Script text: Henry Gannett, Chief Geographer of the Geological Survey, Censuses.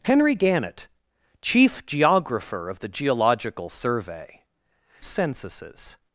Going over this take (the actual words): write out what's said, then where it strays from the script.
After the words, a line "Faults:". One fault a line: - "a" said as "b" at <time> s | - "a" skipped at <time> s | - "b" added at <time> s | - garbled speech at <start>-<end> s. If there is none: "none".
Henry Gannett, Chief Geographer of the Geological Survey, Censuses.
Faults:
none